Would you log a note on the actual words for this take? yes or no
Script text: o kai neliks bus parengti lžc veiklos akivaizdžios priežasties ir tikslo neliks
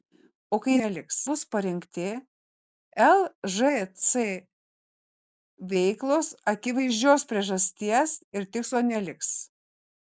no